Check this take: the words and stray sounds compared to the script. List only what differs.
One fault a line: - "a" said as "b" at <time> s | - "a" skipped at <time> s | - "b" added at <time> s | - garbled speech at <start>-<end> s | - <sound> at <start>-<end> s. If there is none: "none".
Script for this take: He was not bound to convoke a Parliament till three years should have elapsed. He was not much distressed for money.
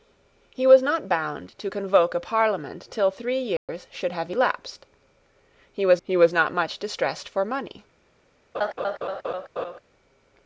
- dropout at 3.6-3.7 s
- "he was" added at 6.0 s
- laugh at 8.5-9.8 s